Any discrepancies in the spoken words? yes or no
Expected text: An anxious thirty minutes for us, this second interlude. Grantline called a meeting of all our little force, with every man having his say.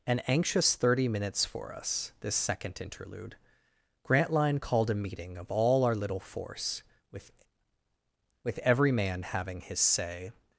yes